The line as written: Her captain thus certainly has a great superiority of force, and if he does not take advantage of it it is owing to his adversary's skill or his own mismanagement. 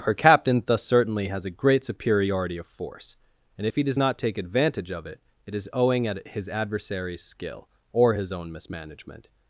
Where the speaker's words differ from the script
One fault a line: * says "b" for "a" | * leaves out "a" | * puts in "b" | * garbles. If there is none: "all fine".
* says "at" for "to"